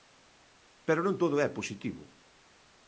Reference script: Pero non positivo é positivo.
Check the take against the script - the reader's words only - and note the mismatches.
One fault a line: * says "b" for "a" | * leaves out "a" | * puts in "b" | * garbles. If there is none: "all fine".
* says "todo" for "positivo"